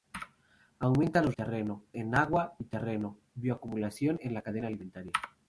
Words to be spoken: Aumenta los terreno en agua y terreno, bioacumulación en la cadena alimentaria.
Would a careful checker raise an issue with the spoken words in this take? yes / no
no